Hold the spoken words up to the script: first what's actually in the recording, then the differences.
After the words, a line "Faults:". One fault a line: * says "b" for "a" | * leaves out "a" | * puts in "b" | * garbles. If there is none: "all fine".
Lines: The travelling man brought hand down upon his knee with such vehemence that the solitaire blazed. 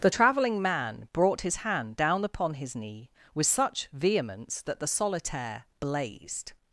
The travelling man brought his hand down upon his knee with such vehemence that the solitaire blazed.
Faults:
* puts in "his"